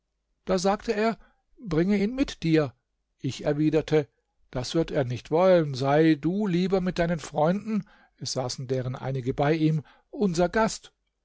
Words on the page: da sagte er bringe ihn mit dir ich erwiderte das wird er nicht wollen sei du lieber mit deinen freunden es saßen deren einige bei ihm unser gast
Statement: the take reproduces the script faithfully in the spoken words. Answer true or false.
true